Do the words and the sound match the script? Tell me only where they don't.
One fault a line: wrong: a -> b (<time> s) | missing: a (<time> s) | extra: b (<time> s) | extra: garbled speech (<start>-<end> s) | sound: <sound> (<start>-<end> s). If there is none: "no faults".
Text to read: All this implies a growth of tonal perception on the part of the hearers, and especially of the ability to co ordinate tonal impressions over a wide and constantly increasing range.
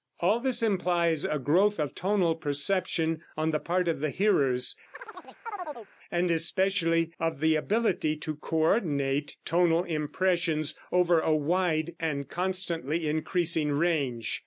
sound: chirp (4.9-5.9 s)